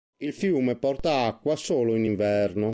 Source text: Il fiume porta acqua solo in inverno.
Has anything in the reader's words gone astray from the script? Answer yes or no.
no